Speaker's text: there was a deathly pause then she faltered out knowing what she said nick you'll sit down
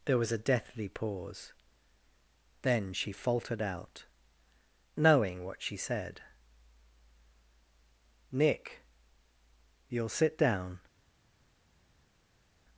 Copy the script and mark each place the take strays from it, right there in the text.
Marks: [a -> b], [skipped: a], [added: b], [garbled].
there was a deathly pause then she faltered out knowing what she said nick you'll sit down